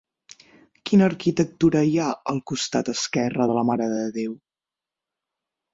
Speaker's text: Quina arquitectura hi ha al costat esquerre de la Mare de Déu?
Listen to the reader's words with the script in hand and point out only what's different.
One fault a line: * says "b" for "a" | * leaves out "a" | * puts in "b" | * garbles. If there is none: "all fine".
all fine